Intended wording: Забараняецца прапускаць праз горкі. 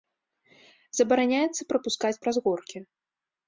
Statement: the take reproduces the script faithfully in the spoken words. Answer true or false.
true